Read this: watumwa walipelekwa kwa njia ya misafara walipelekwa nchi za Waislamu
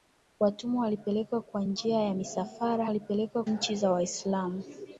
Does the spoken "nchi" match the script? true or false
true